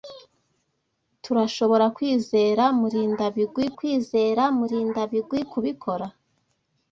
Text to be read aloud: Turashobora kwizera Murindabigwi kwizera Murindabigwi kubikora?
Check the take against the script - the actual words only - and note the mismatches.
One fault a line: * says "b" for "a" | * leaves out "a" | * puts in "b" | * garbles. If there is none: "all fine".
all fine